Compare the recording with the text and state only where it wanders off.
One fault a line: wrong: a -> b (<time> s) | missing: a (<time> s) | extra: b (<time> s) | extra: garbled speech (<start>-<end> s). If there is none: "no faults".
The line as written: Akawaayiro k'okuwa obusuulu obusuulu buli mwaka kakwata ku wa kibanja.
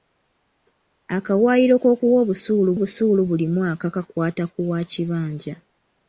no faults